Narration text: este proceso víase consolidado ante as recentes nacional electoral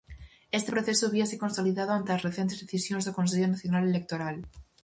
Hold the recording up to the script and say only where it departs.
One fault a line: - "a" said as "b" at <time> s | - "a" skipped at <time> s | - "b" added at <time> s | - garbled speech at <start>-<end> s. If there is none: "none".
- "decisións do consello" added at 2.6 s